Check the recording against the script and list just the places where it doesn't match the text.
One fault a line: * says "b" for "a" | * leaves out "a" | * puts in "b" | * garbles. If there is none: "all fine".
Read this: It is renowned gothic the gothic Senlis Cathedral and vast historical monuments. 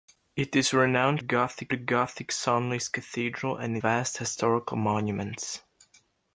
all fine